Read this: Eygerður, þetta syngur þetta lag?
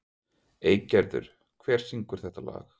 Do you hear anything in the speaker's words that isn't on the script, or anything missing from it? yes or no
yes